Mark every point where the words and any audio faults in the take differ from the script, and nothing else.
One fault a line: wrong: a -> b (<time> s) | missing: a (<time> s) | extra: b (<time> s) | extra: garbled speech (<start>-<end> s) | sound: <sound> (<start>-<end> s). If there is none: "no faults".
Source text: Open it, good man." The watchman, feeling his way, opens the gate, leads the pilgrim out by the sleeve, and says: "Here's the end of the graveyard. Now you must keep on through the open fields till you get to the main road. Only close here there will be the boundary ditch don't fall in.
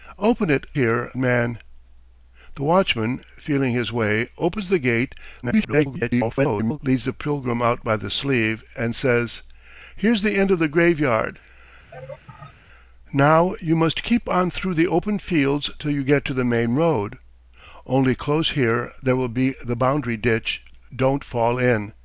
wrong: good -> here (0.7 s)
extra: garbled speech (5.4-6.8 s)
sound: laugh (11.9-12.5 s)